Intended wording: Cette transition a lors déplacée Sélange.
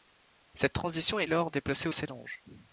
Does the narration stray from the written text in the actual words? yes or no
no